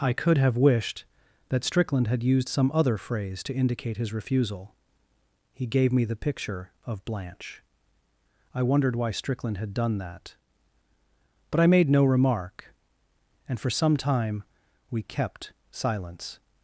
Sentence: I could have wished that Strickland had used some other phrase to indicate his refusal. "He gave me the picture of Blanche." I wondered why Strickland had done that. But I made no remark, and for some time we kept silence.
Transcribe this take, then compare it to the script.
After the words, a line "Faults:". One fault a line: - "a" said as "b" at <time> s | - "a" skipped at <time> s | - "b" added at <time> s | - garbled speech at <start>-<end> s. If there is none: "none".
I could have wished that Strickland had used some other phrase to indicate his refusal. "He gave me the picture of Blanche." I wondered why Strickland had done that. But I made no remark, and for some time we kept silence.
Faults:
none